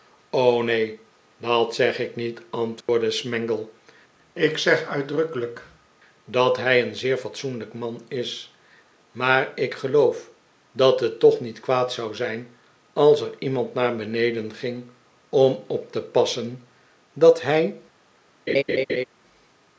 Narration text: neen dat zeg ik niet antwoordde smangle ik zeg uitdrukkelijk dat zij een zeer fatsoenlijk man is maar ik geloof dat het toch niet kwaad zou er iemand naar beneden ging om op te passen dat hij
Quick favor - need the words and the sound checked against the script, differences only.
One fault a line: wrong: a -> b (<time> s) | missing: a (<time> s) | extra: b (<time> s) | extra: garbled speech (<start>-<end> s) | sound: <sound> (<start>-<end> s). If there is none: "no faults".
sound: dropout (2.8-2.9 s)
wrong: zij -> hij (6.6 s)
extra: zijn als (12.2 s)
sound: laugh (18.5-19.0 s)